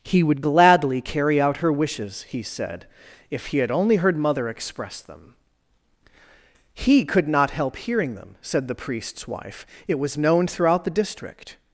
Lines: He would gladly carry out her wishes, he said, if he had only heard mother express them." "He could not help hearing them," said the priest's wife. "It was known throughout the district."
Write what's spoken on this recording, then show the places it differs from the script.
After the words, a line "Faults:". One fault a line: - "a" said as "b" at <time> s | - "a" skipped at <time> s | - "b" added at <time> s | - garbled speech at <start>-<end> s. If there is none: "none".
He would gladly carry out her wishes, he said, if he had only heard mother express them." "He could not help hearing them," said the priest's wife. "It was known throughout the district."
Faults:
none